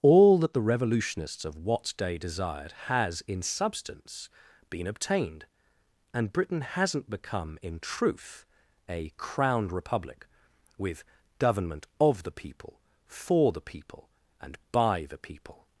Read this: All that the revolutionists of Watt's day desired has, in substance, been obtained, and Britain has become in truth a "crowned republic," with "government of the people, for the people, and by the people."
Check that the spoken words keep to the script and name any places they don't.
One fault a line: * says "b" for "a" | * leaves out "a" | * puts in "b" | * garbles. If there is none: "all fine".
* says "hasn't" for "has"